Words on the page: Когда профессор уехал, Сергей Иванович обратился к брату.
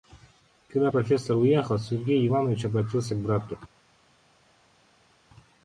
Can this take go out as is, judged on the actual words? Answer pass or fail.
pass